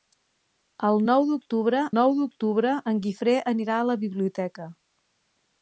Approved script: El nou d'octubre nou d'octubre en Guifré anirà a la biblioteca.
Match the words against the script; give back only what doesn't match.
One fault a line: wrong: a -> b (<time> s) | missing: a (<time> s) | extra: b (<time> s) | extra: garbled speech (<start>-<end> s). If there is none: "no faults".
no faults